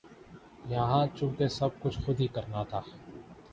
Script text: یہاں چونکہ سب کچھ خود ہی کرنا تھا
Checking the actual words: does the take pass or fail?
pass